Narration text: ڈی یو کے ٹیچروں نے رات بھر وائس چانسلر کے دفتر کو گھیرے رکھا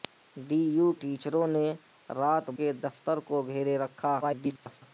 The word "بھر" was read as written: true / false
false